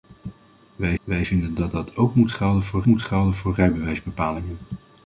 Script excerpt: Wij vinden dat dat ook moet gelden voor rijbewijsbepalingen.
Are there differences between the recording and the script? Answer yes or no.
yes